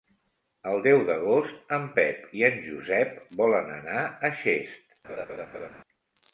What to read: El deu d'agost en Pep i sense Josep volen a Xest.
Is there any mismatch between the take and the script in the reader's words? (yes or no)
yes